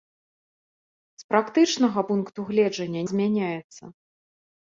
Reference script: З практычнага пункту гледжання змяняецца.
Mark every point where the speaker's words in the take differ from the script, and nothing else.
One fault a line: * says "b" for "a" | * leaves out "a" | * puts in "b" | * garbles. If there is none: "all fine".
all fine